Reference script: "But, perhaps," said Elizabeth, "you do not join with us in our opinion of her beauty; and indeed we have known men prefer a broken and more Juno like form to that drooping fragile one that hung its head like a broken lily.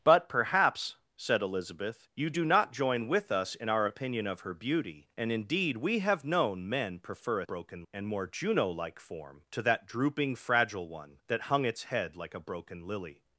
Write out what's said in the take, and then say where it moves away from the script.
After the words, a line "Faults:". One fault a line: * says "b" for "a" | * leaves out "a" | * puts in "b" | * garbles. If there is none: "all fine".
"But, perhaps," said Elizabeth, "you do not join with us in our opinion of her beauty; and indeed we have known men prefer a broken and more Juno like form to that drooping fragile one that hung its head like a broken lily.
Faults:
all fine